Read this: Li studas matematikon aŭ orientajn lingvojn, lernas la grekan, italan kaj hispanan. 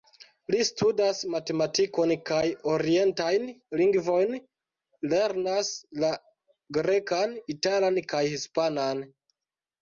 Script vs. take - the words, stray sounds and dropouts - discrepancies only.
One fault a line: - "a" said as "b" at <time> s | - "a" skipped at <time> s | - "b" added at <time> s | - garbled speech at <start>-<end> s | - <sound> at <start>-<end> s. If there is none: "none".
- "aŭ" said as "kaj" at 2.3 s